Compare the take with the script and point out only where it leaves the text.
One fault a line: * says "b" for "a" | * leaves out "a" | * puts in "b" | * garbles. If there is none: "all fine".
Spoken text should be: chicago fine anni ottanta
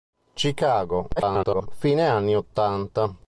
* garbles